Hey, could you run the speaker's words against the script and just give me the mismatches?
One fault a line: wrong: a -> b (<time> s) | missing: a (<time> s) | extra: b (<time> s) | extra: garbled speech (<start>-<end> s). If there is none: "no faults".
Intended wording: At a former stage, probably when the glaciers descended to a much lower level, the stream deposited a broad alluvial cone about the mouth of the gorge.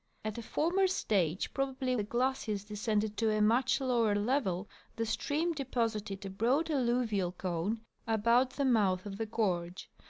missing: when (1.9 s)